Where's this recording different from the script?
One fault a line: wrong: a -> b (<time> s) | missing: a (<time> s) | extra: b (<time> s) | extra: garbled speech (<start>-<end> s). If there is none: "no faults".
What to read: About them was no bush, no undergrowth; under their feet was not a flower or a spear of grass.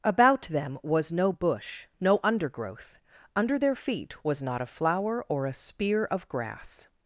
no faults